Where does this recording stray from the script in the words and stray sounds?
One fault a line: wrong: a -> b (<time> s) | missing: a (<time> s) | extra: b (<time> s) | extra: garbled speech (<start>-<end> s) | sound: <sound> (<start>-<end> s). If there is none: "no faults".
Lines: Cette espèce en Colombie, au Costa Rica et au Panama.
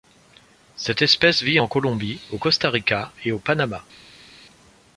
extra: vit (1.4 s)